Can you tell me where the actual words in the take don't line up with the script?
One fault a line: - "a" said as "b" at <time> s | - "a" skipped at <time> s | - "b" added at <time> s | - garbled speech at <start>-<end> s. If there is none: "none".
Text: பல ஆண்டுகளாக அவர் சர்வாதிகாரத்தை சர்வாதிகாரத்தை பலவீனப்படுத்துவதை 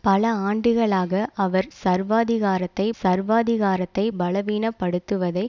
none